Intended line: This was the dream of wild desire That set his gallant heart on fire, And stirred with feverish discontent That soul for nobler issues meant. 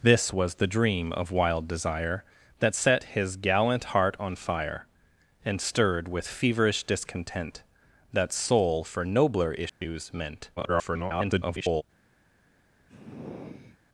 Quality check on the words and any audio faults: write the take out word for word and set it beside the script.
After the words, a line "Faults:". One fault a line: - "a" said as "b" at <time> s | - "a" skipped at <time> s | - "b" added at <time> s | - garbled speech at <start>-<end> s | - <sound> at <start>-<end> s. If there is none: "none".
This was the dream of wild desire That set his gallant heart on fire, And stirred with feverish discontent That soul for nobler issues meant. [garbled]
Faults:
- dropout at 9.7-9.8 s
- garbled speech at 10.6-11.8 s
- sigh at 12.9-13.8 s